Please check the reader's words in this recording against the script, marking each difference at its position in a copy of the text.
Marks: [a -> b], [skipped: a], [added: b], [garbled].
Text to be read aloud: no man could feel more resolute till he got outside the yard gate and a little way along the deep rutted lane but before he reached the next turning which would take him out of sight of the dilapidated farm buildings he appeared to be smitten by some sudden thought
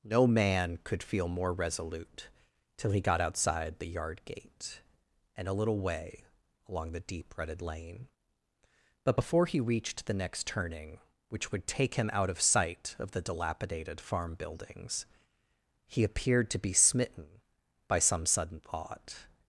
no man could feel more resolute till he got outside the yard gate and a little way along the deep rutted lane but before he reached the next turning which would take him out of sight of the dilapidated farm buildings he appeared to be smitten by some sudden thought